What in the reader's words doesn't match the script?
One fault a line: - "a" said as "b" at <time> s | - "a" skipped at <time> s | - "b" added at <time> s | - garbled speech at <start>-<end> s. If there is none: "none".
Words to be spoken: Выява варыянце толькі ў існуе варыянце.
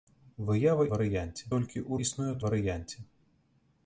none